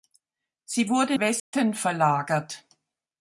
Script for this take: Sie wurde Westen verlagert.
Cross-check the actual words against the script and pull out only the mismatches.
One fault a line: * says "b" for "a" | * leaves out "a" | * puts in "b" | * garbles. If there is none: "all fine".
all fine